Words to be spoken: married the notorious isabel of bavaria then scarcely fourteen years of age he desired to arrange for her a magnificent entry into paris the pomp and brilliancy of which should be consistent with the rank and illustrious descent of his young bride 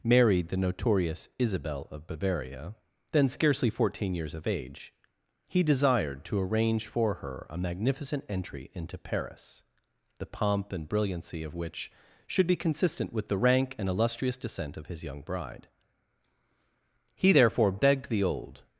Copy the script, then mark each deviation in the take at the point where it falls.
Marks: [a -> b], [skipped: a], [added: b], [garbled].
married the notorious isabel of bavaria then scarcely fourteen years of age he desired to arrange for her a magnificent entry into paris the pomp and brilliancy of which should be consistent with the rank and illustrious descent of his young bride [added: he therefore begged the old]